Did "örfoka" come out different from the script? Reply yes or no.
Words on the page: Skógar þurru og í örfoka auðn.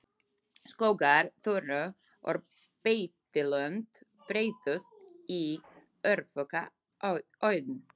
no